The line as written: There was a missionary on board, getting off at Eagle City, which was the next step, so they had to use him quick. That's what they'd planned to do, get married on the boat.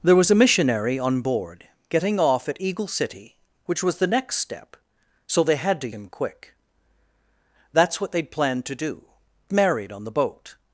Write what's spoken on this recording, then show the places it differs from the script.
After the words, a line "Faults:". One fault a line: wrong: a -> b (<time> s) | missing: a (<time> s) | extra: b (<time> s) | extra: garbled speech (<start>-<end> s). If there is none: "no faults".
There was a missionary on board, getting off at Eagle City, which was the next step, so they had to him quick. That's what they'd planned to do, married on the boat.
Faults:
missing: use (5.9 s)
missing: get (9.0 s)